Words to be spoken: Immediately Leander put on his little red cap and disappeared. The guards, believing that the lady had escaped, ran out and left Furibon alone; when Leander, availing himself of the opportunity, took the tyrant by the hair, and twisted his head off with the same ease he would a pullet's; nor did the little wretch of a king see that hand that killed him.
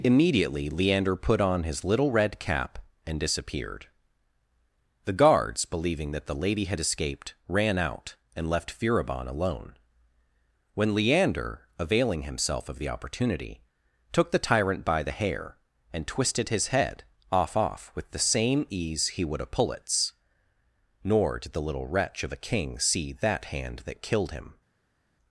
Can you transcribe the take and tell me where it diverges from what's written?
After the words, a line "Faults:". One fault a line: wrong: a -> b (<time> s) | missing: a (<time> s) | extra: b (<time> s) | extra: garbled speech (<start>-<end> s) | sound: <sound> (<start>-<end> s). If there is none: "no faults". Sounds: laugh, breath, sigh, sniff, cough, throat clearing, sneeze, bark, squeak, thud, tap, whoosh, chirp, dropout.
Immediately Leander put on his little red cap and disappeared. The guards, believing that the lady had escaped, ran out and left Furibon alone; when Leander, availing himself of the opportunity, took the tyrant by the hair, and twisted his head off off with the same ease he would a pullet's; nor did the little wretch of a king see that hand that killed him.
Faults:
extra: off (17.6 s)